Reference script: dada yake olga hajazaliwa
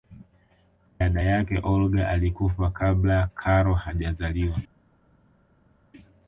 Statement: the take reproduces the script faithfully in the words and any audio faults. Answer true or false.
false